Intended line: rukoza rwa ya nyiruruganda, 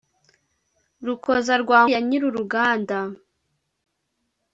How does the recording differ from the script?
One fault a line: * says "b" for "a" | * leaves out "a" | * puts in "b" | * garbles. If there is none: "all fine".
all fine